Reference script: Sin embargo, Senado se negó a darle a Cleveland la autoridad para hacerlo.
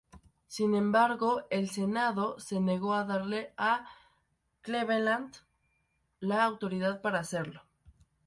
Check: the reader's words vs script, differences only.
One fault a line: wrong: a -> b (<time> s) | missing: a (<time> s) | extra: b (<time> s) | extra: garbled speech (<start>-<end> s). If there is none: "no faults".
extra: el (1.5 s)